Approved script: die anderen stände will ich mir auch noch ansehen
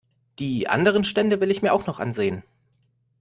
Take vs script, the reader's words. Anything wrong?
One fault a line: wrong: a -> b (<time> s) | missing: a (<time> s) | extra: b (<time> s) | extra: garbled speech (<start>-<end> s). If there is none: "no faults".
no faults